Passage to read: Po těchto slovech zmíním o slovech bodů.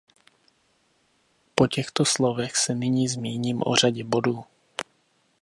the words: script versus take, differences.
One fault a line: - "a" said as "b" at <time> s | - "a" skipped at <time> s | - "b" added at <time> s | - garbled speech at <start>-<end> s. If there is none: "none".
- "se nyní" added at 2.6 s
- "slovech" said as "řadě" at 3.8 s